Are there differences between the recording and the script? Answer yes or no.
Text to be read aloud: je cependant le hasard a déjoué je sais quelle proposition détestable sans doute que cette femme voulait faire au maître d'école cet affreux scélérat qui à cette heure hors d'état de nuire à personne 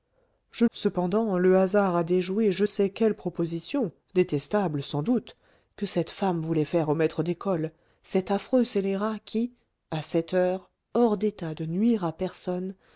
no